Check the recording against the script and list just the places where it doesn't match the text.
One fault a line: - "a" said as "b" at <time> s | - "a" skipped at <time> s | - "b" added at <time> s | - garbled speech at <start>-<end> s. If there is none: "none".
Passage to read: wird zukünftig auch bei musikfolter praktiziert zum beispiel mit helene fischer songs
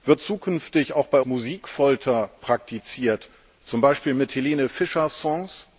none